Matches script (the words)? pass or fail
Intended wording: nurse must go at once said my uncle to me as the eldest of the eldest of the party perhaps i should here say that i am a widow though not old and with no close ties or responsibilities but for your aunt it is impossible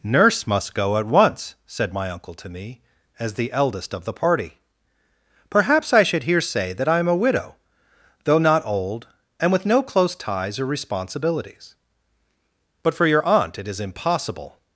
fail